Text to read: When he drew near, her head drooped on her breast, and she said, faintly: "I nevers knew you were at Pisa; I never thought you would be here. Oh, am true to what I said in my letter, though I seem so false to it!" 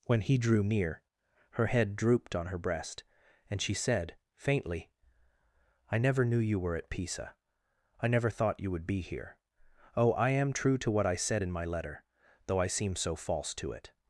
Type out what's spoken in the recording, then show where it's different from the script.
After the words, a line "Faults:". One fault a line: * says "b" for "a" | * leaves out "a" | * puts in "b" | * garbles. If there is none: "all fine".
When he drew near, her head drooped on her breast, and she said, faintly: "I never knew you were at Pisa; I never thought you would be here. Oh, I am true to what I said in my letter, though I seem so false to it!"
Faults:
* says "never" for "nevers"
* puts in "I"